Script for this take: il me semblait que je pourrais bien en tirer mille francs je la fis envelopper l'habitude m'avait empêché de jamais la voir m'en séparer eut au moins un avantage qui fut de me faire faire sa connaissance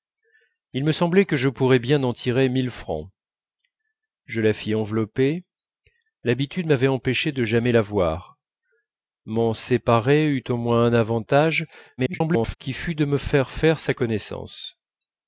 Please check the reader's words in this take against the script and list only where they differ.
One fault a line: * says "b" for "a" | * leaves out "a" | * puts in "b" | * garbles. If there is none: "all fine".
* garbles